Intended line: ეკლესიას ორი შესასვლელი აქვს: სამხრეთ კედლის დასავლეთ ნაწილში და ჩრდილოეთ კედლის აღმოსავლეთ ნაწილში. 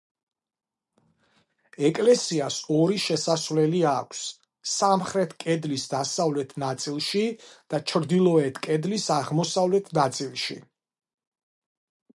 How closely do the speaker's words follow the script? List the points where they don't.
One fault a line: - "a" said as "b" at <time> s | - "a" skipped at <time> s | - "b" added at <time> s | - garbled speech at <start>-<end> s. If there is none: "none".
none